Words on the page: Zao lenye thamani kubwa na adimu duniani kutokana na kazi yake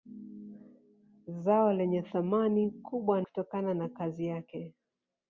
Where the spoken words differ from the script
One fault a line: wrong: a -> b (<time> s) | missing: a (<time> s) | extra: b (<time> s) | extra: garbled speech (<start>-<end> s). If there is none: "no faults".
missing: na adimu duniani (3.2 s)